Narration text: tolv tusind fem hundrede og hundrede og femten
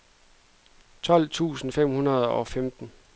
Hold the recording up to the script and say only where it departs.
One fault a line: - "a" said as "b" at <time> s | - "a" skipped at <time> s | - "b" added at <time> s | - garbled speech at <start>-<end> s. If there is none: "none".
- "hundrede og" skipped at 2.5 s